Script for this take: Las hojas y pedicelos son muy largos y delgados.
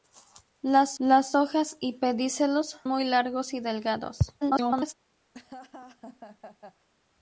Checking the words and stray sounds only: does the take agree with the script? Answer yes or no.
no